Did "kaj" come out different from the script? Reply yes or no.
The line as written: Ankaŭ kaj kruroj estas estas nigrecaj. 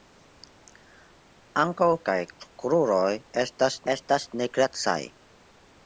no